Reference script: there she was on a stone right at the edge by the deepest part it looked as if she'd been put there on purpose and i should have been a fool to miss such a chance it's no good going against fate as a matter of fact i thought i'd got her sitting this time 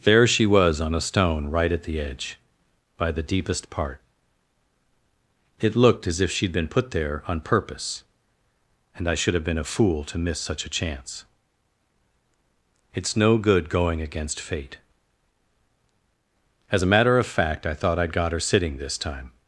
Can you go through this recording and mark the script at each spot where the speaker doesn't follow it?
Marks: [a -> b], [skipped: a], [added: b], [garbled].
there she was on a stone right at the edge by the deepest part it looked as if she'd been put there on purpose and i should have been a fool to miss such a chance it's no good going against fate as a matter of fact i thought i'd got her sitting this time